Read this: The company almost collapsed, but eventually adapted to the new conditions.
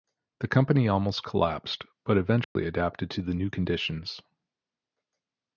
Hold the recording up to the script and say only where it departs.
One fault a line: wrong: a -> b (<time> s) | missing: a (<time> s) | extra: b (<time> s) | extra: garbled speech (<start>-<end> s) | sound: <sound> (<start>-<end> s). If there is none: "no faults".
sound: dropout (2.4-2.6 s)